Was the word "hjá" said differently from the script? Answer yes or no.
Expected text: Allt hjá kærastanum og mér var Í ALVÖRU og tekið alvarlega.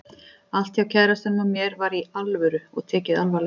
no